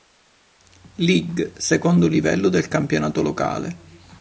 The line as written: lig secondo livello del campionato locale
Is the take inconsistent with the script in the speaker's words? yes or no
no